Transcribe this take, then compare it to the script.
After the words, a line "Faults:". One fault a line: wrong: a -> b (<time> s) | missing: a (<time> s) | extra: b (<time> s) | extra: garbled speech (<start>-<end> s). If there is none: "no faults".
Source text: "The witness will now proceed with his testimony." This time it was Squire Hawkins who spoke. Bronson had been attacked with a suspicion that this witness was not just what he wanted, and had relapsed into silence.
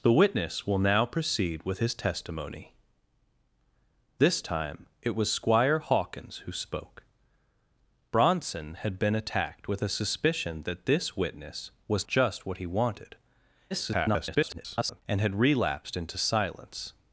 "The witness will now proceed with his testimony." This time it was Squire Hawkins who spoke. Bronson had been attacked with a suspicion that this witness was just what he wanted, [garbled] and had relapsed into silence.
Faults:
missing: not (12.1 s)
extra: garbled speech (13.7-15.0 s)